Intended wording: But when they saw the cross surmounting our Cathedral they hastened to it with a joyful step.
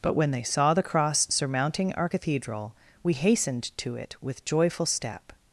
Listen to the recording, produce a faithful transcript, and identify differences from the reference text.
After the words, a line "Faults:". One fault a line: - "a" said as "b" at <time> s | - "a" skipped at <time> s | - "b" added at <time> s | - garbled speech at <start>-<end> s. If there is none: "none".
But when they saw the cross surmounting our Cathedral we hastened to it with joyful step.
Faults:
- "they" said as "we" at 3.0 s
- "a" skipped at 4.4 s